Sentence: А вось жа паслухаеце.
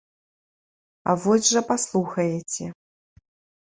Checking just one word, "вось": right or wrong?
right